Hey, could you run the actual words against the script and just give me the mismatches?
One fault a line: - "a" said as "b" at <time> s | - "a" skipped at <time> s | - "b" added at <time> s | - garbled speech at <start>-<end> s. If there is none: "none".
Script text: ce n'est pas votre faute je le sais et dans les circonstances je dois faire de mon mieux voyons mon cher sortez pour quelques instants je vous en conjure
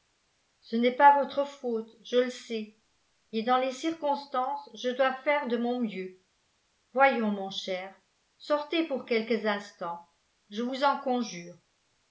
none